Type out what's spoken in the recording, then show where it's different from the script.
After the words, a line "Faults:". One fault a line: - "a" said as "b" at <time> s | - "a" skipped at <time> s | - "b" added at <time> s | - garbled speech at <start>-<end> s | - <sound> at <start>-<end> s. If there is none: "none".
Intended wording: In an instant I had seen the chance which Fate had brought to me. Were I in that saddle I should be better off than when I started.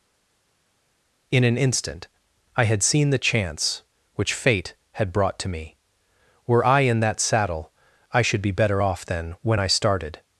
In an instant I had seen the chance which Fate had brought to me. Were I in that saddle I should be better off than when I started.
Faults:
none